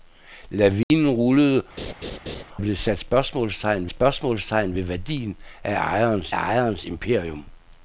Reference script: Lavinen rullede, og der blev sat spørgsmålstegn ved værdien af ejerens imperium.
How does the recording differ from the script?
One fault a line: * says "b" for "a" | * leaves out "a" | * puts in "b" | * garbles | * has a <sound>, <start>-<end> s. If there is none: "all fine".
* has a dropout, 0.8-0.9 s
* leaves out "og der"
* has a laugh, 1.8-2.4 s
* puts in "spørgsmålstegn"
* puts in "ejerens"